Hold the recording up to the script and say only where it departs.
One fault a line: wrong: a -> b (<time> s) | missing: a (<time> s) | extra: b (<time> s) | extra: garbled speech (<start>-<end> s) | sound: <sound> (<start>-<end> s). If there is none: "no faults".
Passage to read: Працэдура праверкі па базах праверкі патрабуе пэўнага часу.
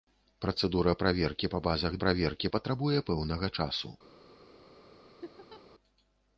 sound: laugh (5.2-5.6 s)